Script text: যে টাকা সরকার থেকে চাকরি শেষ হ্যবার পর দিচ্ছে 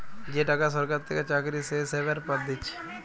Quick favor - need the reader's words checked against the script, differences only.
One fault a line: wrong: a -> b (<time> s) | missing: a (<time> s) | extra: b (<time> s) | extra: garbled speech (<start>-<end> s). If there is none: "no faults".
no faults